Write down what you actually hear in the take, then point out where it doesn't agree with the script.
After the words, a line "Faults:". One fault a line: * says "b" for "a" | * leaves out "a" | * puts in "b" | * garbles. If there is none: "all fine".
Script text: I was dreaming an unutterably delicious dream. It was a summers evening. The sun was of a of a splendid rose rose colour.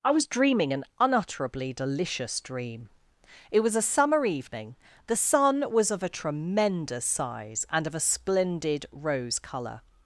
I was dreaming an unutterably delicious dream. It was a summer evening. The sun was of a tremendous size, and of a splendid rose colour.
Faults:
* says "summer" for "summers"
* puts in "tremendous size and"
* leaves out "rose"